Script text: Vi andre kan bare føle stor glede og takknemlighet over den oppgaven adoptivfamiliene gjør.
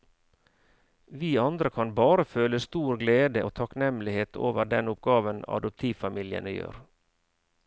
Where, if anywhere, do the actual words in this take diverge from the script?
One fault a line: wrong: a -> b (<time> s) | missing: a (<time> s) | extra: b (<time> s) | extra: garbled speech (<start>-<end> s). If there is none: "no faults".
no faults